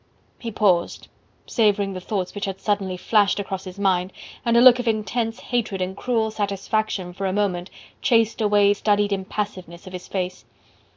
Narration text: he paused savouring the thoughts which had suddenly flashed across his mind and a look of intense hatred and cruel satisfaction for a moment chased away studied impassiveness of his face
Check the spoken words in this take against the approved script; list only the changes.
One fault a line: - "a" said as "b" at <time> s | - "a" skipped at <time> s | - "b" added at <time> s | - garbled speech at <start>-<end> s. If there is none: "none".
none